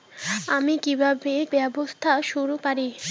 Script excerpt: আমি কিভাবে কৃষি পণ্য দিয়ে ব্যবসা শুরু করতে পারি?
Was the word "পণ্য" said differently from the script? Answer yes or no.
yes